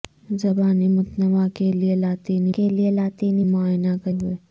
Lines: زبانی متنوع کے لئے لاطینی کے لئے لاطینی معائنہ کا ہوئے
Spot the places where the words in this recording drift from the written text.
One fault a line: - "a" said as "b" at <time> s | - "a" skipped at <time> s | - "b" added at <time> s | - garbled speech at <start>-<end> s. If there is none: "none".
none